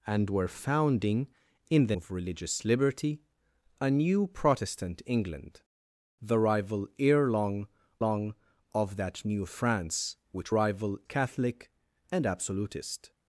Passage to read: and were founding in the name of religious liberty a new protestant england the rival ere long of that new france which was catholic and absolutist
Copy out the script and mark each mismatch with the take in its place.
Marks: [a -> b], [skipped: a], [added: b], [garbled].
and were founding in the [skipped: name] of religious liberty a new protestant england the rival ere long [added: long] of that new france which [was -> rival] catholic and absolutist